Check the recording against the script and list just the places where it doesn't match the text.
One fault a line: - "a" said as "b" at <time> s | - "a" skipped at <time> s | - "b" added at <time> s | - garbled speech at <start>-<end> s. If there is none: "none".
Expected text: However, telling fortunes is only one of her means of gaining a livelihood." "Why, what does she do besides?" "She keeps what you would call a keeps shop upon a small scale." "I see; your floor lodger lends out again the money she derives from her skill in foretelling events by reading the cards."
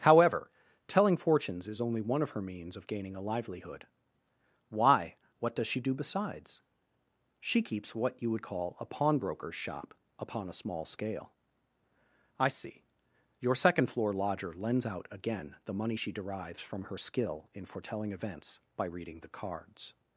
- "keeps" said as "pawnbroker's" at 8.8 s
- "second" added at 13.5 s